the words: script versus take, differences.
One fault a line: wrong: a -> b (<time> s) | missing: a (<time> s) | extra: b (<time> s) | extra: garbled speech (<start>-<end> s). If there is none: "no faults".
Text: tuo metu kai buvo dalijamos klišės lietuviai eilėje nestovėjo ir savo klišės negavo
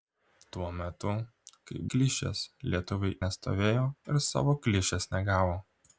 missing: buvo dalijamos (1.8 s)
missing: eilėje (3.2 s)